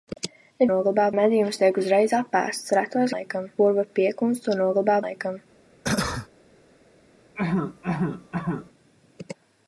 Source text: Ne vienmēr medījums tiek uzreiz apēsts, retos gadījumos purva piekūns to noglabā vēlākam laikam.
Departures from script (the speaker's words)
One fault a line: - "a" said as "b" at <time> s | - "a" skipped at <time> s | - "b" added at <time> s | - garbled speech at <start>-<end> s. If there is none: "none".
- "vienmēr" said as "noglabā" at 0.7 s
- "gadījumos" said as "laikam" at 3.1 s
- "vēlākam" skipped at 5.0 s